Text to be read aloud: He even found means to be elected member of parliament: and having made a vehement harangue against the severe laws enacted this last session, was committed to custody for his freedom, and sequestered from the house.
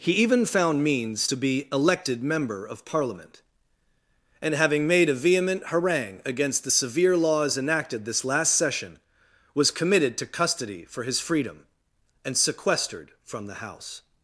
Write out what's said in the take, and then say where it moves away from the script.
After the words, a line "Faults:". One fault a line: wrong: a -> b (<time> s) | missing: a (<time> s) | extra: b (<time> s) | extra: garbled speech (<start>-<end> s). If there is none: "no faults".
He even found means to be elected member of parliament: and having made a vehement harangue against the severe laws enacted this last session, was committed to custody for his freedom, and sequestered from the house.
Faults:
no faults